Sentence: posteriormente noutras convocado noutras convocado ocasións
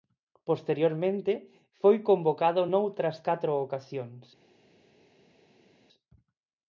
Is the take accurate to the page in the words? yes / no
no